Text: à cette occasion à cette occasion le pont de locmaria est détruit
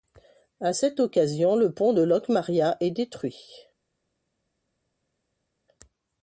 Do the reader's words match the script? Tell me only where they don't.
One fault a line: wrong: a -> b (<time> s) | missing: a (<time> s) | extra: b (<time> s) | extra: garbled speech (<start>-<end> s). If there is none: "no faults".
missing: à cette occasion (1.6 s)